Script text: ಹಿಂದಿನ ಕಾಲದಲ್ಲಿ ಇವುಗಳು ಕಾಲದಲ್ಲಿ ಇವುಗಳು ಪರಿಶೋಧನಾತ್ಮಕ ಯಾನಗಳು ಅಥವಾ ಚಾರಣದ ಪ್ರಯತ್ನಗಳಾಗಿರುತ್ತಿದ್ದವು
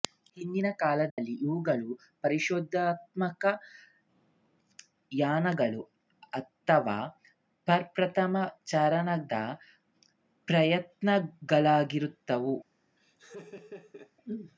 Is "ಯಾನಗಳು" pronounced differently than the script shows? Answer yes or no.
no